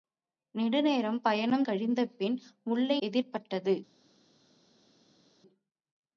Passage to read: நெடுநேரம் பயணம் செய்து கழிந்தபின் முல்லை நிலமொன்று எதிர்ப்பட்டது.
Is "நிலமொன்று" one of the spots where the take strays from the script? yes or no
yes